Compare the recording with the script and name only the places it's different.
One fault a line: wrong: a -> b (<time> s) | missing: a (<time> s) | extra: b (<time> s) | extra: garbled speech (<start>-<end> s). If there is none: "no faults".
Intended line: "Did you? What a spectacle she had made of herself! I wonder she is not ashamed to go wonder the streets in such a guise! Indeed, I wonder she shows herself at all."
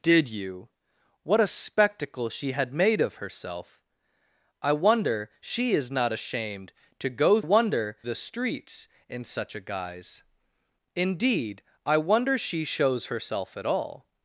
no faults